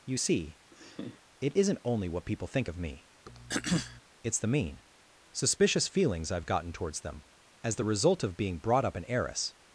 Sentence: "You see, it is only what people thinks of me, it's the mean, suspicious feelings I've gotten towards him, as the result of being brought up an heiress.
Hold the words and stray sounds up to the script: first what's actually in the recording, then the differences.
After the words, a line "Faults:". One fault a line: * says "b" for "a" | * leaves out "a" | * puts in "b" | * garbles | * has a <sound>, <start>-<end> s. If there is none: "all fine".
"You see, it isn't only what people think of me, it's the mean, suspicious feelings I've gotten towards them, as the result of being brought up an heiress.
Faults:
* has a laugh, 0.7-1.2 s
* says "isn't" for "is"
* says "think" for "thinks"
* has a throat clearing, 3.3-4.0 s
* says "them" for "him"